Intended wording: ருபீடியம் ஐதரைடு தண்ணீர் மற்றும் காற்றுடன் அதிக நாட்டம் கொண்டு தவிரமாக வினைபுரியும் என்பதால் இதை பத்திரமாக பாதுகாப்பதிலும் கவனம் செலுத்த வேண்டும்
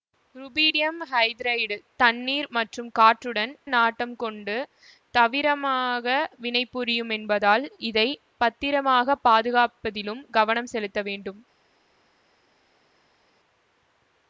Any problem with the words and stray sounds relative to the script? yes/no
yes